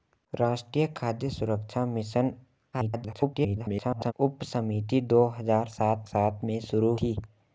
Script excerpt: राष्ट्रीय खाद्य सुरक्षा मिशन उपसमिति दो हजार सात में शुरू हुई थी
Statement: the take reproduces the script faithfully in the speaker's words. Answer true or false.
false